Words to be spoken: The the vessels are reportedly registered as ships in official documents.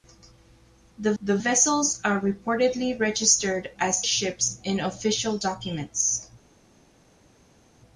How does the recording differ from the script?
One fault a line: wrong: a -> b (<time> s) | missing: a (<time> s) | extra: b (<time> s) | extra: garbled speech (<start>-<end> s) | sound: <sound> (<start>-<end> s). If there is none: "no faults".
no faults